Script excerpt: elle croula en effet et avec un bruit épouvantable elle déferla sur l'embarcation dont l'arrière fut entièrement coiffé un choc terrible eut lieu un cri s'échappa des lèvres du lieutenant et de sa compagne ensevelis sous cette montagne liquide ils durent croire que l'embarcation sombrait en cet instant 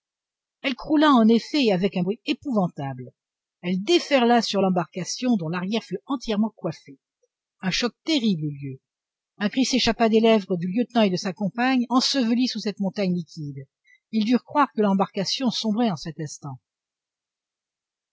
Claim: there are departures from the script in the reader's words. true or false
false